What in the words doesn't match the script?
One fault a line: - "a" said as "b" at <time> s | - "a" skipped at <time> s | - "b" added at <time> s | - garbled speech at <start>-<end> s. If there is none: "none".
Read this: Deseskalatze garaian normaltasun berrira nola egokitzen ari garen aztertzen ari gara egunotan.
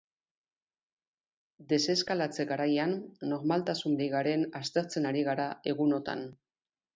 - "berrira nola egokitzen" skipped at 4.0 s